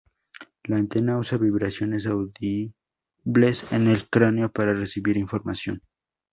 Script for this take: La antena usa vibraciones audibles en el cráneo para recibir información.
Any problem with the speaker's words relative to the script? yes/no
no